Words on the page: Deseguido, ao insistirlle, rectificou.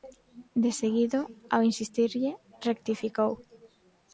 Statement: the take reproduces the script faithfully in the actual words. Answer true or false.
true